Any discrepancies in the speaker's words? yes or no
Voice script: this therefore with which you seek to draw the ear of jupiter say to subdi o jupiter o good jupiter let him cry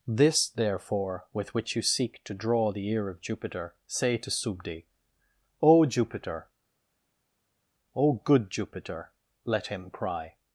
no